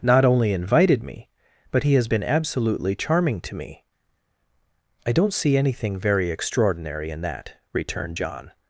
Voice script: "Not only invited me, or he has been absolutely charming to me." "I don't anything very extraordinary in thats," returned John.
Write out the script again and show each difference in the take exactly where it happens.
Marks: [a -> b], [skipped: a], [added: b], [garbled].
"Not only invited me, [or -> but] he has been absolutely charming to me." "I don't [added: see] anything very extraordinary in [thats," -> that] returned John.